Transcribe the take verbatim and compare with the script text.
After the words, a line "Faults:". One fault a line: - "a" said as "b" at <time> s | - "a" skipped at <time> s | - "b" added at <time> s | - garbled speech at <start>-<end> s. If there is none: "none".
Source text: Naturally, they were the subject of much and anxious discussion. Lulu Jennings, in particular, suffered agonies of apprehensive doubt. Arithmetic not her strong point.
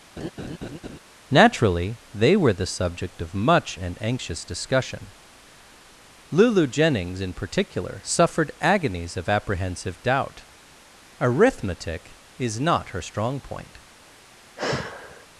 Naturally, they were the subject of much and anxious discussion. Lulu Jennings, in particular, suffered agonies of apprehensive doubt. Arithmetic is not her strong point.
Faults:
- "is" added at 12.4 s